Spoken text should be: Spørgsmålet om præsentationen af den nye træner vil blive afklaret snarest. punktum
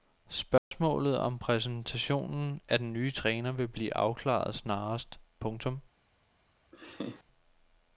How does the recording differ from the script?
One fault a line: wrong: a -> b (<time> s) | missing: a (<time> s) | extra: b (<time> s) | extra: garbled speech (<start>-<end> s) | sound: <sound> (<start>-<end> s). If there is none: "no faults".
sound: dropout (0.6-0.7 s)
sound: laugh (6.7-7.2 s)